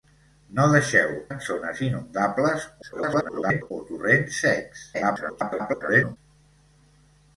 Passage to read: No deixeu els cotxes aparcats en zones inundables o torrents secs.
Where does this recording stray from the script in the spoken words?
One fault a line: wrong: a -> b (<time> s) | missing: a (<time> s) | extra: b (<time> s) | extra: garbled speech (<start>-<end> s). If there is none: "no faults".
missing: els cotxes aparcats (1.1 s)
extra: garbled speech (2.8-3.7 s)
extra: garbled speech (4.9-6.2 s)